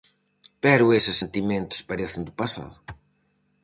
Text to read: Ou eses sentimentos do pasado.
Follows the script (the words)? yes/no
no